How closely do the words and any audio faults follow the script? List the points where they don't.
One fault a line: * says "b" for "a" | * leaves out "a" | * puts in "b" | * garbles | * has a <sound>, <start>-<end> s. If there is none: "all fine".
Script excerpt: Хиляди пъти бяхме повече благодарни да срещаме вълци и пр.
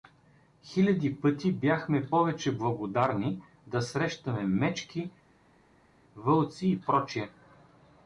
* puts in "мечки"